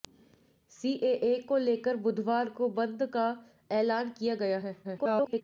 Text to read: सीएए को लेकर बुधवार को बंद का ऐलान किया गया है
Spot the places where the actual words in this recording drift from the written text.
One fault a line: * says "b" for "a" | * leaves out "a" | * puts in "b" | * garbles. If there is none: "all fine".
* garbles